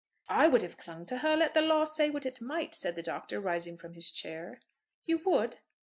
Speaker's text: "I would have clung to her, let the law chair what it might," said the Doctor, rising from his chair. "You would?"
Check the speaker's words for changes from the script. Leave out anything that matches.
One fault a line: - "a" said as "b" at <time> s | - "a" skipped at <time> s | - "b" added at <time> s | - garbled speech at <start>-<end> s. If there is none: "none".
- "chair" said as "say" at 1.9 s